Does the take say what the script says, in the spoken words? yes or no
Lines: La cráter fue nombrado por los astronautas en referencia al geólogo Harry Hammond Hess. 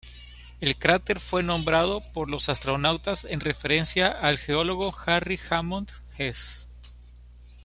no